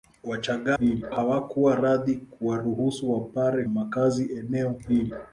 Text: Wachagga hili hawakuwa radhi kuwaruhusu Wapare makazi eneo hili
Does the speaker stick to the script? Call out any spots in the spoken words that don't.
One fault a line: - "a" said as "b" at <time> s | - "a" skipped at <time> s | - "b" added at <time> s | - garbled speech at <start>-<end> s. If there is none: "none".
none